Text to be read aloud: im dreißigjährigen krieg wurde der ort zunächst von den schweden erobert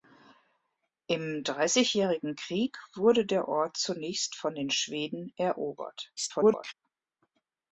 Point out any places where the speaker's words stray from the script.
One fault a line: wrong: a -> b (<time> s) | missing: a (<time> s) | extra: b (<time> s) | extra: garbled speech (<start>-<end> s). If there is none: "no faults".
extra: garbled speech (6.2-6.7 s)